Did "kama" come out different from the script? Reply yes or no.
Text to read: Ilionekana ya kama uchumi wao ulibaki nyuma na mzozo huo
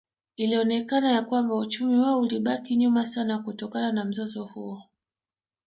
yes